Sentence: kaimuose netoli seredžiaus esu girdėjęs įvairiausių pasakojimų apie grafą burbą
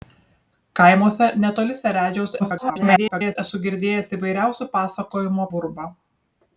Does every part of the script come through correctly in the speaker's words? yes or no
no